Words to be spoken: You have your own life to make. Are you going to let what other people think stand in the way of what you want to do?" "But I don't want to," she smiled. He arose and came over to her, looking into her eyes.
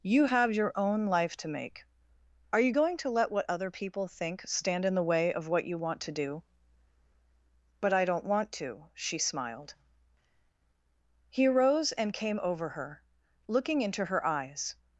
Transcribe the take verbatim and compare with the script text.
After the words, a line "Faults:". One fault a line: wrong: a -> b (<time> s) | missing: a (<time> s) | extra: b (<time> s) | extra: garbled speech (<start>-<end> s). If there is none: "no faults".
You have your own life to make. Are you going to let what other people think stand in the way of what you want to do?" "But I don't want to," she smiled. He arose and came over her, looking into her eyes.
Faults:
missing: to (12.7 s)